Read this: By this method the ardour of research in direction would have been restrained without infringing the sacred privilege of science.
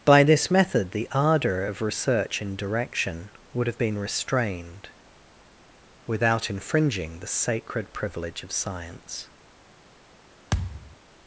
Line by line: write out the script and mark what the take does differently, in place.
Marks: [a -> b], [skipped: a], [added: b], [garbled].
By this method the ardour of research in direction would have been restrained without infringing the sacred privilege of science.